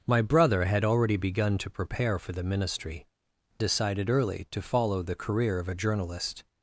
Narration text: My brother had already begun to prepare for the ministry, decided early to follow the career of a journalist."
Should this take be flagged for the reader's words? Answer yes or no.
no